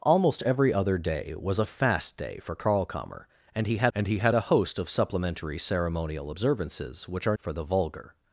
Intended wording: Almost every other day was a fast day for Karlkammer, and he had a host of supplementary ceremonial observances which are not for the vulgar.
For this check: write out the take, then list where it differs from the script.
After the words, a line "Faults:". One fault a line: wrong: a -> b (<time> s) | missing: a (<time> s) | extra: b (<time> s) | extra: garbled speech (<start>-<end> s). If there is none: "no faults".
Almost every other day was a fast day for Karlkammer, and he had and he had a host of supplementary ceremonial observances which are for the vulgar.
Faults:
extra: and he had (3.9 s)
missing: not (7.4 s)